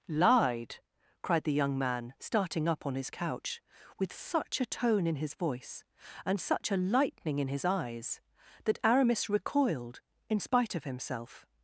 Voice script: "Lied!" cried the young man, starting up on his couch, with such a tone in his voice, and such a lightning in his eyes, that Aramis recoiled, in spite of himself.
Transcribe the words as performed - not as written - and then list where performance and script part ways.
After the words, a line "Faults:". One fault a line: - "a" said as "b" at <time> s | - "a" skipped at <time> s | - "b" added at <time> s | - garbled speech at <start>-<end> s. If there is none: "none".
"Lied!" cried the young man, starting up on his couch, with such a tone in his voice, and such a lightning in his eyes, that Aramis recoiled, in spite of himself.
Faults:
none